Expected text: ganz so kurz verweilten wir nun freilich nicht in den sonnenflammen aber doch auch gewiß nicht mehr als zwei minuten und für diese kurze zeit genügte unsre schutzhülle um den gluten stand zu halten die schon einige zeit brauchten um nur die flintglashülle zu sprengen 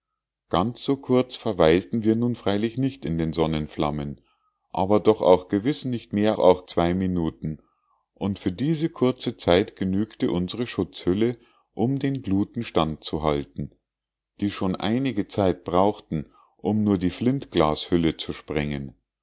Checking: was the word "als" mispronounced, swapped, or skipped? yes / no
yes